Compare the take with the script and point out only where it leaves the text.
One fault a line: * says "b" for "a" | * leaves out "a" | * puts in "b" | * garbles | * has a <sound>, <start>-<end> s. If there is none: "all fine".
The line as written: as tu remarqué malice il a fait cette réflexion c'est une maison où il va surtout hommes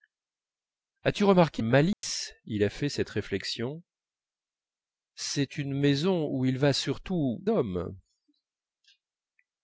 * has a dropout, 1.9-2.0 s